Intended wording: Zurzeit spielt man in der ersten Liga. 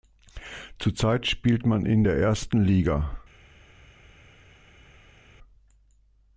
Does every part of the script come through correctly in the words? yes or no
yes